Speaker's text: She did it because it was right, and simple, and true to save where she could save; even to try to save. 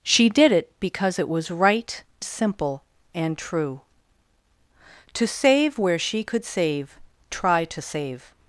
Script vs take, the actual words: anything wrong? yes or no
yes